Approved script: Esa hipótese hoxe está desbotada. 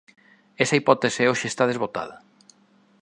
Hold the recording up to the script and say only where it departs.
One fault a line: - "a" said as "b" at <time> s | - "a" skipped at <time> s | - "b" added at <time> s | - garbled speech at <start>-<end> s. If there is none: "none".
none